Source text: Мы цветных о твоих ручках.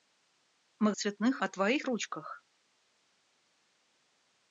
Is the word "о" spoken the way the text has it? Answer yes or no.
yes